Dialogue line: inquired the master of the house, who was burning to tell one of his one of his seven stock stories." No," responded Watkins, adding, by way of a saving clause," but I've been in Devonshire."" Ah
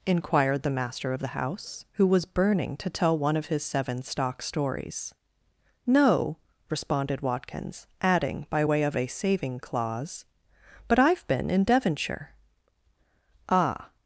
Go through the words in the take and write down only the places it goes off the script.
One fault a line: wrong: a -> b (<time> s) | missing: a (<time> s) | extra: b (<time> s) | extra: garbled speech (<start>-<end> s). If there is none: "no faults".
missing: one of his (3.6 s)